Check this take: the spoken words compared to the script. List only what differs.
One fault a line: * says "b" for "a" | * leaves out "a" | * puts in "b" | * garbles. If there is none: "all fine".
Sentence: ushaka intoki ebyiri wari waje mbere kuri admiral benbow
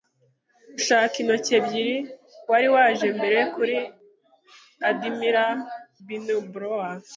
all fine